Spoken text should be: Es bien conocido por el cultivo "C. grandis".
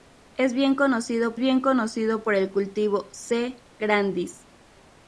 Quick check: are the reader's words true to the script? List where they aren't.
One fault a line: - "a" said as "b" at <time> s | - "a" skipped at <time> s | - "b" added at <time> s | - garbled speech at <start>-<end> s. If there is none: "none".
- "bien conocido" added at 1.4 s